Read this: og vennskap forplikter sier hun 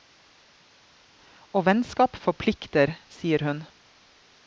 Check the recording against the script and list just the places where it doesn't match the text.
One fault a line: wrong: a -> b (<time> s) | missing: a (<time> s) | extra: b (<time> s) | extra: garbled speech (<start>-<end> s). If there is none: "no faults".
no faults